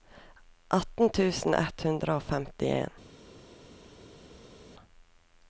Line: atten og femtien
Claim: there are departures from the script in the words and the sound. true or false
true